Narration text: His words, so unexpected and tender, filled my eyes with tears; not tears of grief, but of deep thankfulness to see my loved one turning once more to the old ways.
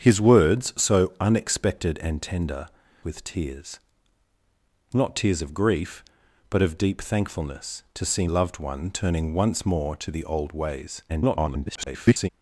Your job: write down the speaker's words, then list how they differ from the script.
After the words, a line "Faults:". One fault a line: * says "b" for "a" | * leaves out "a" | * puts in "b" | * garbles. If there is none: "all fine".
His words, so unexpected and tender, with tears; not tears of grief, but of deep thankfulness to see loved one turning once more to the old ways. [garbled]
Faults:
* leaves out "filled my eyes"
* leaves out "my"
* garbles